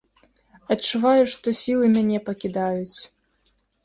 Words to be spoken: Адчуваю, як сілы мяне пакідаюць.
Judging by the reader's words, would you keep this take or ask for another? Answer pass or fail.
fail